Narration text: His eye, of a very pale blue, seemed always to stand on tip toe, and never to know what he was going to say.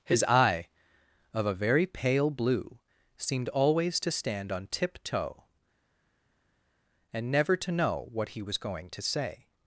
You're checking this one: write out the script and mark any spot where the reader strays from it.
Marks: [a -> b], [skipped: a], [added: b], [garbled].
His eye, of a very pale blue, seemed always to stand on tip toe, and never to know what he was going to say.